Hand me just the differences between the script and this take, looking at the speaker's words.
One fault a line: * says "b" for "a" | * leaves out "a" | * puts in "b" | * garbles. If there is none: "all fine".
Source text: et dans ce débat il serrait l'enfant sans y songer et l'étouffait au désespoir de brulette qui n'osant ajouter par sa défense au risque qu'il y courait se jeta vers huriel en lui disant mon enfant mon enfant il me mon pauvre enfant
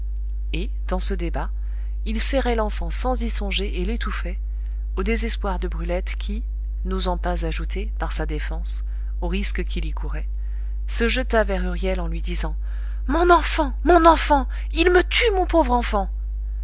* puts in "pas"
* puts in "tue"